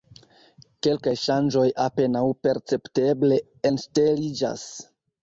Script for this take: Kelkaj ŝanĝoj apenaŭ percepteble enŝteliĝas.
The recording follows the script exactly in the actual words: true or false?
true